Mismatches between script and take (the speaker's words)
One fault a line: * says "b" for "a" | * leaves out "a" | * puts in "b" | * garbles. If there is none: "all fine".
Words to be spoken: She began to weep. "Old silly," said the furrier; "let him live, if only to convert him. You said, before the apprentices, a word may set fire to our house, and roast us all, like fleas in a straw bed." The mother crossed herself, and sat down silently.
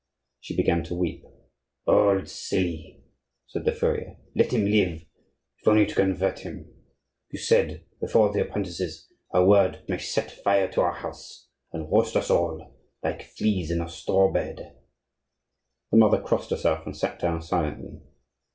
all fine